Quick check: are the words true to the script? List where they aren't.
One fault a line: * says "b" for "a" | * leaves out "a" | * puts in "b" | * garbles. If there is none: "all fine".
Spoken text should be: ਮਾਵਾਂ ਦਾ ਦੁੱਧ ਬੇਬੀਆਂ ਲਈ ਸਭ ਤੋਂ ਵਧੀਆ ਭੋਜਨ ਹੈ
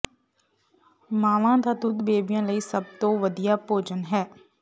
all fine